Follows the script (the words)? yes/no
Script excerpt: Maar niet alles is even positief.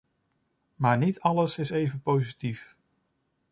yes